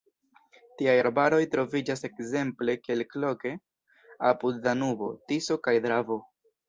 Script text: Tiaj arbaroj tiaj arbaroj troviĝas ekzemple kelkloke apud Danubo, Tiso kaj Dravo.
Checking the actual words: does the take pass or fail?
fail